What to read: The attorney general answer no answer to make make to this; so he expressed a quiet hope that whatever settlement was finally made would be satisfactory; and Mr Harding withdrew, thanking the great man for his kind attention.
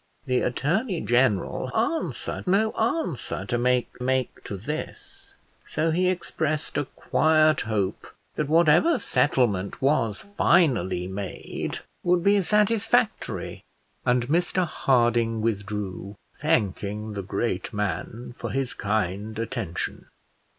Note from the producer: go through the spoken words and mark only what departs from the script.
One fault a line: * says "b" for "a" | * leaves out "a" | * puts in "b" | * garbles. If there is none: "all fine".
all fine